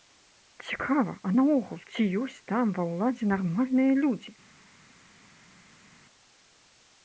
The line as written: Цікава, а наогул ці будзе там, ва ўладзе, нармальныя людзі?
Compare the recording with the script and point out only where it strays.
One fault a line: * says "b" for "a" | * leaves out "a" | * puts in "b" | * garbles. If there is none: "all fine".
* says "ёсць" for "будзе"